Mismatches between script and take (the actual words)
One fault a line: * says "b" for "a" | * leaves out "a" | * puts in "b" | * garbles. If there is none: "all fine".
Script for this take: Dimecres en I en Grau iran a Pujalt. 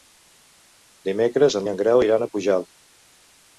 all fine